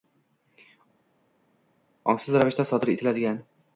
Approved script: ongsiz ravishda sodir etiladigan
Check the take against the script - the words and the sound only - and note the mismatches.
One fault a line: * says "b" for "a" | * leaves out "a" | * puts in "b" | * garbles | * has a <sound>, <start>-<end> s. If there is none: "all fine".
all fine